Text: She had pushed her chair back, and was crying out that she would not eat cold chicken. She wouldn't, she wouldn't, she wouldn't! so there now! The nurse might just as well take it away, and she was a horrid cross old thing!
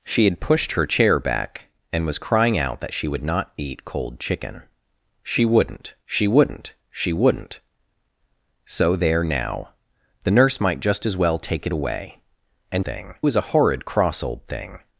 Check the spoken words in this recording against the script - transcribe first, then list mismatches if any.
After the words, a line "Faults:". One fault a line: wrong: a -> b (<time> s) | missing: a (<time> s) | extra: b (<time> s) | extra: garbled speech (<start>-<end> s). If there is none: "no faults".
She had pushed her chair back, and was crying out that she would not eat cold chicken. She wouldn't, she wouldn't, she wouldn't! so there now! The nurse might just as well take it away, and thing was a horrid cross old thing!
Faults:
wrong: she -> thing (12.8 s)